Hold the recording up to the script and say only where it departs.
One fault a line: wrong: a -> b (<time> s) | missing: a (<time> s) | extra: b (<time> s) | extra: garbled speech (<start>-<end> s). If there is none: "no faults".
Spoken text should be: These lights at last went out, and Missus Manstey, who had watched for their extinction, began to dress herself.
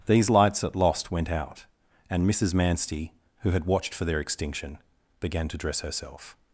wrong: last -> lost (0.8 s)